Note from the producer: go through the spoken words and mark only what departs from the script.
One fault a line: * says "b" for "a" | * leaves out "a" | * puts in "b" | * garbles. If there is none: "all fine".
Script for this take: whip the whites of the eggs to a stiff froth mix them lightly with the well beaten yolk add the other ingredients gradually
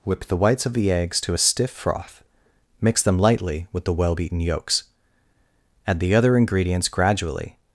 * says "yolks" for "yolk"